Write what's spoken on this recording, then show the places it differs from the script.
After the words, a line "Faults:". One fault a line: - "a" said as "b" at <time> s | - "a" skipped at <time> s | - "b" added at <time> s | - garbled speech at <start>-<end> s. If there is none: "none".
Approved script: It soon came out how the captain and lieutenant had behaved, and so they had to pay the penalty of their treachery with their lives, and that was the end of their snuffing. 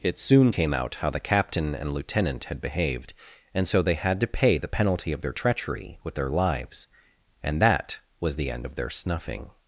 It soon came out how the captain and lieutenant had behaved, and so they had to pay the penalty of their treachery with their lives, and that was the end of their snuffing.
Faults:
none